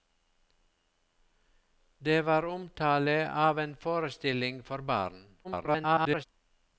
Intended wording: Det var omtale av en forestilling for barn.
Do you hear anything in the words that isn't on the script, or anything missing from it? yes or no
yes